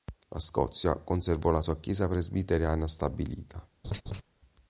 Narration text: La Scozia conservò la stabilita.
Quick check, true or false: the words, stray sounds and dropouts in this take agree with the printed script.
false